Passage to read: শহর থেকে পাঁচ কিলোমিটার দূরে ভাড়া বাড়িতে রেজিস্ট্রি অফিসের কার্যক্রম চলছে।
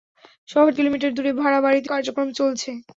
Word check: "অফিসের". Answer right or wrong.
wrong